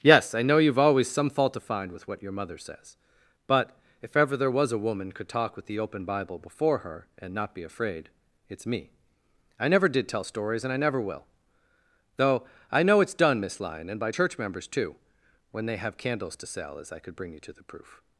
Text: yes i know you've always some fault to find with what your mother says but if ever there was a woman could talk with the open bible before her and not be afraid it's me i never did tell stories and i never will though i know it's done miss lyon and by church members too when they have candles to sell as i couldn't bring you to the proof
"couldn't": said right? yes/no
no